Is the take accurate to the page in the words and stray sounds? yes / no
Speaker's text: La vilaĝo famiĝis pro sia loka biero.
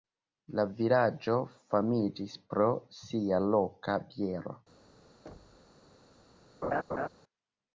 no